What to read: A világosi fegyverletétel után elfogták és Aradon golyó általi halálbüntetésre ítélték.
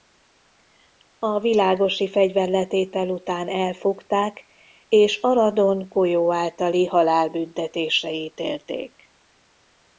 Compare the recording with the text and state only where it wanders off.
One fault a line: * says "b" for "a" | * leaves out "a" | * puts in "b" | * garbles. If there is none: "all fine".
all fine